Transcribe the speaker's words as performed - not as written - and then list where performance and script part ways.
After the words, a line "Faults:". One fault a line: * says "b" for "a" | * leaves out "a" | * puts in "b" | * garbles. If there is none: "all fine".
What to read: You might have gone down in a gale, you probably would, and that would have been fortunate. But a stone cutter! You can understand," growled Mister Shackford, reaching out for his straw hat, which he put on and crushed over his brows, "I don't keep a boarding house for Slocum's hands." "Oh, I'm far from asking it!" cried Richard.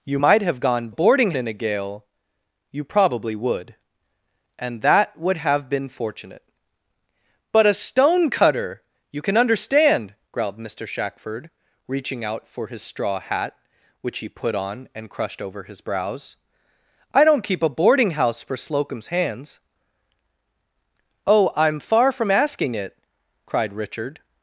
You might have gone boarding in a gale, you probably would, and that would have been fortunate. But a stone cutter! You can understand," growled Mister Shackford, reaching out for his straw hat, which he put on and crushed over his brows, "I don't keep a boarding house for Slocum's hands." "Oh, I'm far from asking it!" cried Richard.
Faults:
* says "boarding" for "down"